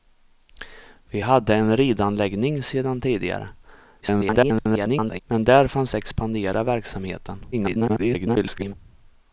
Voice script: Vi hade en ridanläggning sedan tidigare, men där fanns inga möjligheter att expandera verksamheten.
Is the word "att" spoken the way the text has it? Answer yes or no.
no